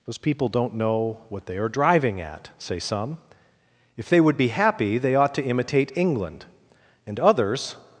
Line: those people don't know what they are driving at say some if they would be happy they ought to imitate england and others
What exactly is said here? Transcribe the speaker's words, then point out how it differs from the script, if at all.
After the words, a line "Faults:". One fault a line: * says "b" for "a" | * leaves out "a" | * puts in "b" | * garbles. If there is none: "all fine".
those people don't know what they are driving at say some if they would be happy they ought to imitate england and others
Faults:
all fine